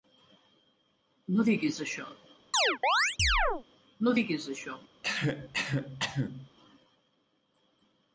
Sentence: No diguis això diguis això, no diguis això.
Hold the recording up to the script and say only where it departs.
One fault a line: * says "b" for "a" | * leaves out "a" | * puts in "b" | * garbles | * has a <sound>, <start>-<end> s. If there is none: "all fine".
* leaves out "diguis això"
* has a chirp, 2.5-3.6 s
* has a cough, 5.0-6.5 s